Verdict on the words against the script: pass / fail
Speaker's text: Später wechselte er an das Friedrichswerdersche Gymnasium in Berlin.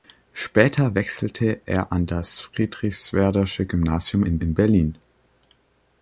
fail